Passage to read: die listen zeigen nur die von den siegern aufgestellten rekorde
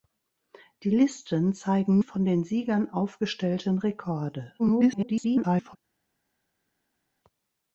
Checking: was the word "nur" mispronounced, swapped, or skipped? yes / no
yes